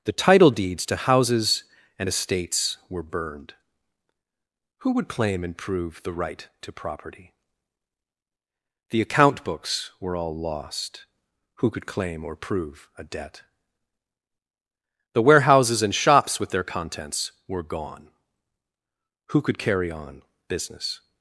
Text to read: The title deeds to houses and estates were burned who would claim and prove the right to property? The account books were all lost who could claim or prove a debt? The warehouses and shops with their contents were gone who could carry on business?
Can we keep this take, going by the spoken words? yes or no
yes